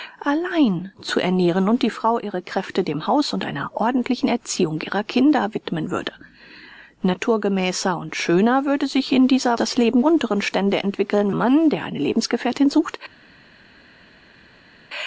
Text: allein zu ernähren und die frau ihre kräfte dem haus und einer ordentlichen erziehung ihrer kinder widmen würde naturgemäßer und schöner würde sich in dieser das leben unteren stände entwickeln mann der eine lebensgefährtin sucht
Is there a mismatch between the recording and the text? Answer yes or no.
no